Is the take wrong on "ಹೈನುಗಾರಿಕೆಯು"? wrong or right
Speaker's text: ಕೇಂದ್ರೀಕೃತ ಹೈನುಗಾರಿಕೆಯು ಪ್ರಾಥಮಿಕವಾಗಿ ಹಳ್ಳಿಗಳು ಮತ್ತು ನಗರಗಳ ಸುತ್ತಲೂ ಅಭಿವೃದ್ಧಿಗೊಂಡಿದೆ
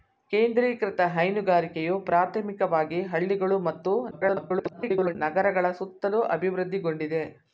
right